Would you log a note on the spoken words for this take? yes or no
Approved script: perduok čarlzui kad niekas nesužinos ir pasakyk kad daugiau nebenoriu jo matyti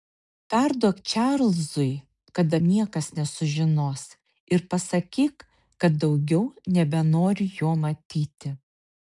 no